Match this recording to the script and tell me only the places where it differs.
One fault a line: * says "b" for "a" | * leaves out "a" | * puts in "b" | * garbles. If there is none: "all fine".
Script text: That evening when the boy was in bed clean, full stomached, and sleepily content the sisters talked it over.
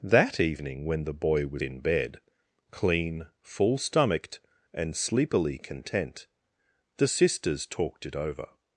all fine